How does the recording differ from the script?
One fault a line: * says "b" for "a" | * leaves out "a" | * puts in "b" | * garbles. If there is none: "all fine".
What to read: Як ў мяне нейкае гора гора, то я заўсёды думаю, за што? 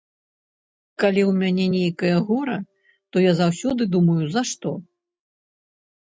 * says "Калі" for "Як"
* leaves out "гора"